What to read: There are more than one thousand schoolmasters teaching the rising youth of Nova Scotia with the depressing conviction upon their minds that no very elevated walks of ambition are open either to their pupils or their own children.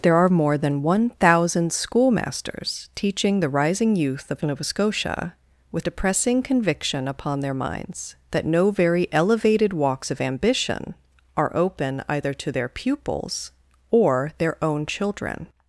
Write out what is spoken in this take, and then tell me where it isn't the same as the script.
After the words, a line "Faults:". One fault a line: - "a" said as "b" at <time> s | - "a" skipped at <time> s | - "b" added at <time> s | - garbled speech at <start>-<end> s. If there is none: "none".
There are more than one thousand schoolmasters teaching the rising youth of Nova Scotia with depressing conviction upon their minds that no very elevated walks of ambition are open either to their pupils or their own children.
Faults:
- "the" skipped at 5.9 s